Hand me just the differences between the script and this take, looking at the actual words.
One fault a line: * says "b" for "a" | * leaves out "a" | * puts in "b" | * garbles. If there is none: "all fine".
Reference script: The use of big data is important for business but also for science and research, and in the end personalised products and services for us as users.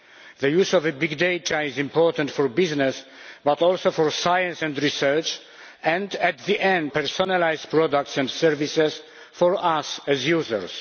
all fine